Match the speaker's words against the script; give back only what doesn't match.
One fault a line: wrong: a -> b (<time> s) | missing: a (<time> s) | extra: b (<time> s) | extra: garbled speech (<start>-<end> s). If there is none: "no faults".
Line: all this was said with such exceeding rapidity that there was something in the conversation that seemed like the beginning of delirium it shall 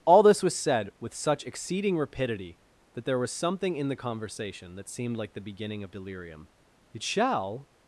no faults